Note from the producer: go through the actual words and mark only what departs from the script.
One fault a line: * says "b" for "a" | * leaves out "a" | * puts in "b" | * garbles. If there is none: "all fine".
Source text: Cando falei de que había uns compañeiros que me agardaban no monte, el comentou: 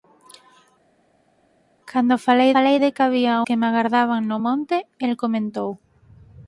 * puts in "falei"
* leaves out "uns compañeiros"